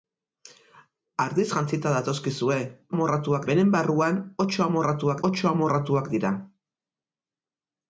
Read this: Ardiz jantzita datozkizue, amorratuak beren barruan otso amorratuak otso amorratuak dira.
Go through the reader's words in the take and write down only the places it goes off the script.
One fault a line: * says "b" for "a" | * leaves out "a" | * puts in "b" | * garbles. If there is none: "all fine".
all fine